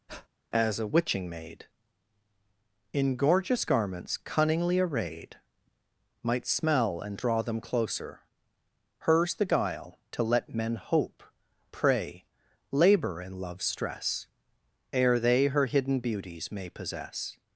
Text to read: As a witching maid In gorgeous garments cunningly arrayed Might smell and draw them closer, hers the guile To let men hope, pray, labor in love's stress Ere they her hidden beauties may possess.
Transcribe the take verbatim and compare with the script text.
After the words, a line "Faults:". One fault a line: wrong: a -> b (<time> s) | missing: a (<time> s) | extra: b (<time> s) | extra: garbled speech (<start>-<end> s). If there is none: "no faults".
As a witching maid In gorgeous garments cunningly arrayed Might smell and draw them closer, hers the guile To let men hope, pray, labor in love's stress Ere they her hidden beauties may possess.
Faults:
no faults